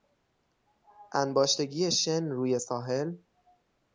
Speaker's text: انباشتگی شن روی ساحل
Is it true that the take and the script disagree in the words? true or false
false